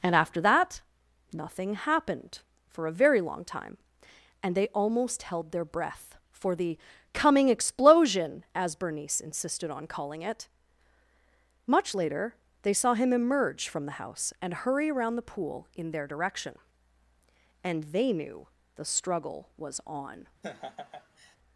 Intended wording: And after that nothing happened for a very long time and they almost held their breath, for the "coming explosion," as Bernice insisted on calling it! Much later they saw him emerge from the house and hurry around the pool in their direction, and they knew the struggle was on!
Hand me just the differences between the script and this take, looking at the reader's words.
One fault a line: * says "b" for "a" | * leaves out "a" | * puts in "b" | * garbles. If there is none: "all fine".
all fine